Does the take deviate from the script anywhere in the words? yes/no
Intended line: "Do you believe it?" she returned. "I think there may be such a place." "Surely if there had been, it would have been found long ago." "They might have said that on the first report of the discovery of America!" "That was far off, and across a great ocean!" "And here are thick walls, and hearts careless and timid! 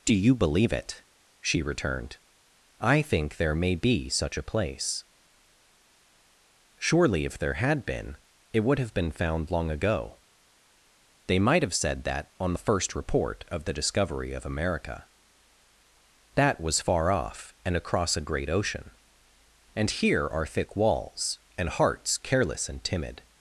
no